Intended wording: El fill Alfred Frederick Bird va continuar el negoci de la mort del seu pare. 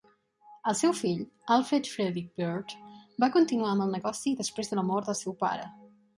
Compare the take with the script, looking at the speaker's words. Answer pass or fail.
fail